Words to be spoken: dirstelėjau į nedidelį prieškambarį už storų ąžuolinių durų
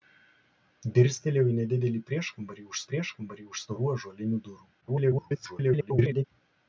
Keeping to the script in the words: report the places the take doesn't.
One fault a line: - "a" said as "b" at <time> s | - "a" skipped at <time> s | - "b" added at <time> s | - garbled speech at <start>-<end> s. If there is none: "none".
- "prieškambarį už" added at 2.9 s
- garbled speech at 4.8-6.2 s